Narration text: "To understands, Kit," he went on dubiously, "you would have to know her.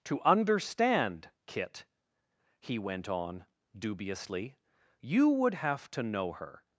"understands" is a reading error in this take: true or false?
true